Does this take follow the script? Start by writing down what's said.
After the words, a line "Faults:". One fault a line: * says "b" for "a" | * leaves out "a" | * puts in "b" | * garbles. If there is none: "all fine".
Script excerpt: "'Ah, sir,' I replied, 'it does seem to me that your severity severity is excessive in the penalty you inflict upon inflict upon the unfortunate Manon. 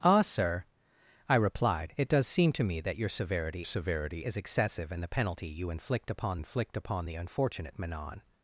"'Ah, sir,' I replied, 'it does seem to me that your severity severity is excessive in the penalty you inflict upon inflict upon the unfortunate Manon.
Faults:
all fine